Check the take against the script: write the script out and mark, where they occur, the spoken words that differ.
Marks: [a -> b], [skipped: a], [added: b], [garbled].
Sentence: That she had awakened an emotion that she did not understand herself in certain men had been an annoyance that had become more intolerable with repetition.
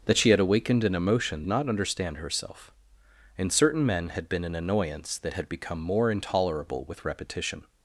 That she had awakened an emotion [skipped: that she did] not understand herself in certain men had been an annoyance that had become more intolerable with repetition.